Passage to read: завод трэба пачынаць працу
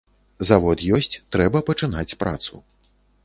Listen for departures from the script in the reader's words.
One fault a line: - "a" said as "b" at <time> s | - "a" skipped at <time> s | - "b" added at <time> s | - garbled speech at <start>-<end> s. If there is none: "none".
- "ёсць" added at 1.0 s